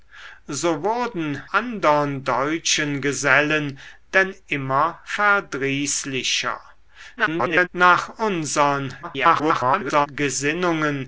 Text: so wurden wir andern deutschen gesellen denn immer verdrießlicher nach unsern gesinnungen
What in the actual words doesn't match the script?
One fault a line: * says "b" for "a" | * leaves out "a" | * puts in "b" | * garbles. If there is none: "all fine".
* leaves out "wir"
* garbles
* garbles